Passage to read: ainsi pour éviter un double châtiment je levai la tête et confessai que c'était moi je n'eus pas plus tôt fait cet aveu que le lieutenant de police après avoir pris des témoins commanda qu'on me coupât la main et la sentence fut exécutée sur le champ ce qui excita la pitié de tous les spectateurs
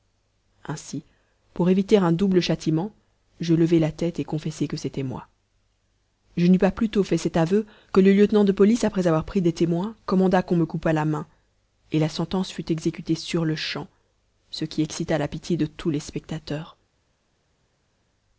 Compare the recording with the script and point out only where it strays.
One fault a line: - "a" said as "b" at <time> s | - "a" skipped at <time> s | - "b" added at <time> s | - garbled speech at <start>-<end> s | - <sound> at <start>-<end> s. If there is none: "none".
none